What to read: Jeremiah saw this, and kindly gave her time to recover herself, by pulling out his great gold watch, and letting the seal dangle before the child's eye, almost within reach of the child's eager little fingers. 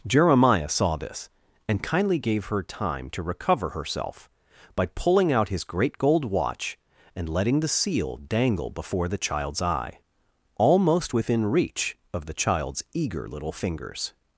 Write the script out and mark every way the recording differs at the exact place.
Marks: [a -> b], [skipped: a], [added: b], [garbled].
Jeremiah saw this, and kindly gave her time to recover herself, by pulling out his great gold watch, and letting the seal dangle before the child's eye, almost within reach of the child's eager little fingers.